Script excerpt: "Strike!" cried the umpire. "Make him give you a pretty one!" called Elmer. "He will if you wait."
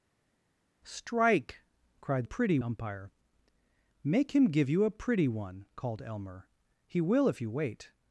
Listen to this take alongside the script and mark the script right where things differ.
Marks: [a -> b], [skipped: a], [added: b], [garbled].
"Strike!" cried [the -> pretty] umpire. "Make him give you a pretty one!" called Elmer. "He will if you wait."